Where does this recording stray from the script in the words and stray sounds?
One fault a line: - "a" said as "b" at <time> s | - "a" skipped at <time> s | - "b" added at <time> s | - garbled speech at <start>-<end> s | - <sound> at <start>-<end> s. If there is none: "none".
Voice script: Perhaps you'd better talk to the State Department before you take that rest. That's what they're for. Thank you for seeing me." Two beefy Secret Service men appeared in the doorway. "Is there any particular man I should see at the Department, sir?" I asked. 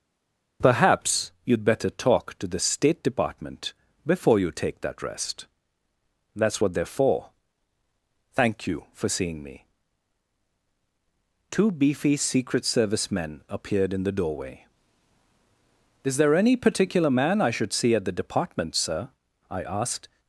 none